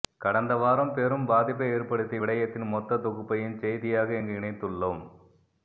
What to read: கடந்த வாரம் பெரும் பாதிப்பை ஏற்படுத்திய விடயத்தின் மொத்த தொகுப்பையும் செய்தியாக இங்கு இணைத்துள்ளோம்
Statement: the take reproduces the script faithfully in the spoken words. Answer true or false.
true